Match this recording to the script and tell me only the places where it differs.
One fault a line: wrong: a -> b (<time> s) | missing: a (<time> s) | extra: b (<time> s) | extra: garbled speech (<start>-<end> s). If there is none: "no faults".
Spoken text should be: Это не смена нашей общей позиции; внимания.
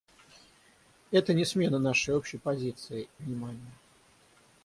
no faults